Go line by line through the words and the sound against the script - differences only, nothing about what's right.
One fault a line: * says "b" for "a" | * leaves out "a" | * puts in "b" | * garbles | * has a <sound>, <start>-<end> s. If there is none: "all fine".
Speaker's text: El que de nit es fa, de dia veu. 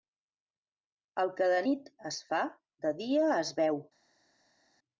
* puts in "es"